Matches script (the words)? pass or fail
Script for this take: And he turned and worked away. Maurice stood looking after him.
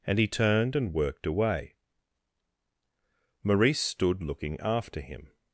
pass